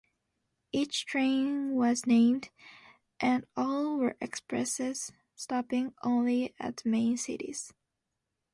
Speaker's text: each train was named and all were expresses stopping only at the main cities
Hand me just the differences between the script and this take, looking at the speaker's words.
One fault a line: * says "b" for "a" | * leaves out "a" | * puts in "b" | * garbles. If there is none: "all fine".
all fine